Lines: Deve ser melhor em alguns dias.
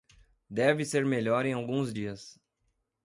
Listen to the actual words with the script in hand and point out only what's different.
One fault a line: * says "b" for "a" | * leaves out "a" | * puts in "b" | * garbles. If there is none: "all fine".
all fine